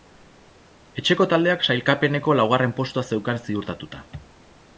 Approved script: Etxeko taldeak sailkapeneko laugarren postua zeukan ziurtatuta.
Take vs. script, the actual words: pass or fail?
pass